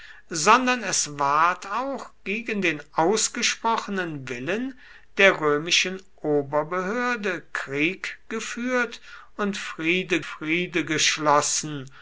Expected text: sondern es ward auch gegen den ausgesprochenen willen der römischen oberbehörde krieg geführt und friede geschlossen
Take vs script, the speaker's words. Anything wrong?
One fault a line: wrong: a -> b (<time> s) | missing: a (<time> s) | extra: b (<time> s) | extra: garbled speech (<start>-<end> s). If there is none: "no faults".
extra: friede (10.2 s)